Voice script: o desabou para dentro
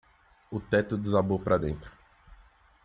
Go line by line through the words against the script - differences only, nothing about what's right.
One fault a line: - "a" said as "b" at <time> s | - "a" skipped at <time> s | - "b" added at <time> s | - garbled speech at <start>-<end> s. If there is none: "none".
- "teto" added at 0.6 s